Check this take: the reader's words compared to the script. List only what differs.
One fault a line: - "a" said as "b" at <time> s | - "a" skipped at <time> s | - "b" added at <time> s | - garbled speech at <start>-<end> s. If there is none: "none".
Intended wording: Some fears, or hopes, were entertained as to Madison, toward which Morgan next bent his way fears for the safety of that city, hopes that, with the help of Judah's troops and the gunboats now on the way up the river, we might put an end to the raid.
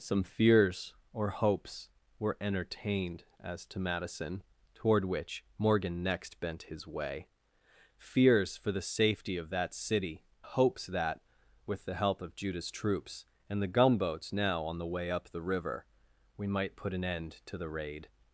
none